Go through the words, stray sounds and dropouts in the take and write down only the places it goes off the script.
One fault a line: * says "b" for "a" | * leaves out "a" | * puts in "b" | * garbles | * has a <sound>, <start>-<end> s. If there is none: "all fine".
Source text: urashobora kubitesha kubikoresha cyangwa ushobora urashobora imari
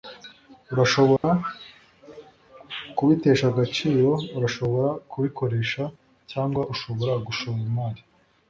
* has a dropout, 1.2-1.2 s
* puts in "agaciro urashobora"
* says "gushora" for "urashobora"